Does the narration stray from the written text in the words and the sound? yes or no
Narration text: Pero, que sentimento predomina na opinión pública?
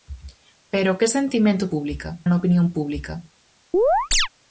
yes